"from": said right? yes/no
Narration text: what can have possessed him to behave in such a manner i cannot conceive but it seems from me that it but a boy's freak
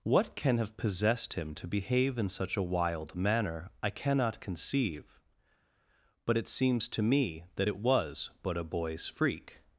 no